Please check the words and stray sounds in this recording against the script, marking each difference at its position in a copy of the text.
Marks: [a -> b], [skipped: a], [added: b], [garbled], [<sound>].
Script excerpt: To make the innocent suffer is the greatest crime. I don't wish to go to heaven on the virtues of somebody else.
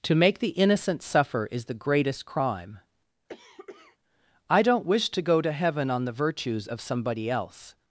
To make the innocent suffer is the greatest crime. [cough] I don't wish to go to heaven on the virtues of somebody else.